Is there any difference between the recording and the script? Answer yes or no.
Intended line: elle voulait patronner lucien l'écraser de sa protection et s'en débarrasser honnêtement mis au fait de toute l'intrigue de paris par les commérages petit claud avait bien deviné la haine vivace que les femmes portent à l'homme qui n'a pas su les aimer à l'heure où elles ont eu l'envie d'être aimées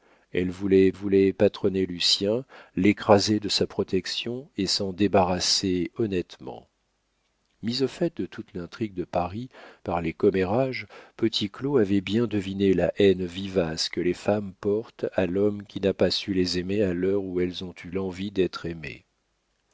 yes